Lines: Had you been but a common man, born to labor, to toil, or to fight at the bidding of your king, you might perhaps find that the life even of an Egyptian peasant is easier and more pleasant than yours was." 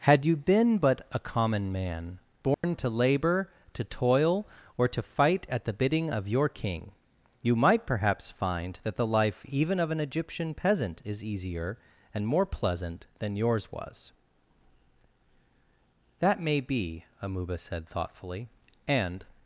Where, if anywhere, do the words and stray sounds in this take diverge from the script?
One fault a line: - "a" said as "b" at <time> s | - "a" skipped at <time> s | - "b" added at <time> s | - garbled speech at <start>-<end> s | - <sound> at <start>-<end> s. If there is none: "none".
- dropout at 2.5-2.6 s
- "That may be Amuba said thoughtfully and" added at 16.2 s